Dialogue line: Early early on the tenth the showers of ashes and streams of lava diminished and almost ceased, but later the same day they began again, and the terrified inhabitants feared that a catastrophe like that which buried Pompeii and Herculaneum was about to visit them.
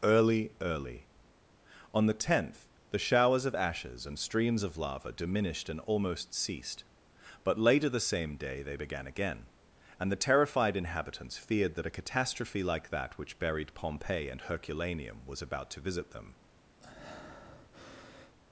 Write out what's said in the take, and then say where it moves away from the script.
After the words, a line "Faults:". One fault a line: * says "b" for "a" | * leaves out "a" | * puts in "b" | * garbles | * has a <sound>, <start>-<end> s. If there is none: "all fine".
Early early on the tenth the showers of ashes and streams of lava diminished and almost ceased, but later the same day they began again, and the terrified inhabitants feared that a catastrophe like that which buried Pompeii and Herculaneum was about to visit them.
Faults:
* has a breath, 16.8-18.4 s